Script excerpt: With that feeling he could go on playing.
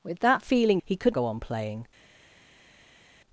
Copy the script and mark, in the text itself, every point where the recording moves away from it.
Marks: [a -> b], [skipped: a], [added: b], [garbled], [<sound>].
With that feeling he could go on playing.